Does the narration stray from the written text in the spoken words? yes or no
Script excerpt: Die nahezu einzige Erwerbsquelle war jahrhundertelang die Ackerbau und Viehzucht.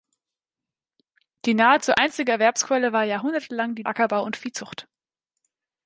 no